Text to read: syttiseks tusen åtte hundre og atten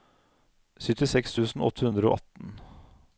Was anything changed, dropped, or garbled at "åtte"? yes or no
no